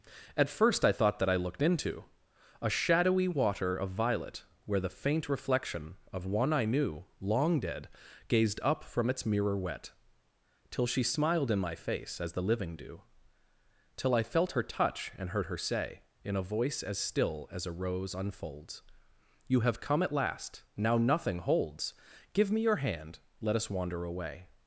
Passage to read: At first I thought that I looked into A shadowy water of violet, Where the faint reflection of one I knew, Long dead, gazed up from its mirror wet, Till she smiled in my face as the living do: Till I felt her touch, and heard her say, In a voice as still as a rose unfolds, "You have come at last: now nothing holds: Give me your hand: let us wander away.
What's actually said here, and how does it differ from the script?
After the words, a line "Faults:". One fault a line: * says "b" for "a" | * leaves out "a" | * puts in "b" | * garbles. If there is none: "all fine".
At first I thought that I looked into A shadowy water of violet, Where the faint reflection of one I knew, Long dead, gazed up from its mirror wet, Till she smiled in my face as the living do: Till I felt her touch, and heard her say, In a voice as still as a rose unfolds, "You have come at last: now nothing holds: Give me your hand: let us wander away.
Faults:
all fine